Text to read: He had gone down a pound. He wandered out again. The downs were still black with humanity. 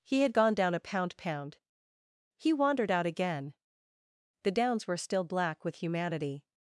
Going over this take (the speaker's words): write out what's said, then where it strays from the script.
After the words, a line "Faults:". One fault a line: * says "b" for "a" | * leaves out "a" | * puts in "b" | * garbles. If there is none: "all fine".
He had gone down a pound pound. He wandered out again. The downs were still black with humanity.
Faults:
* puts in "pound"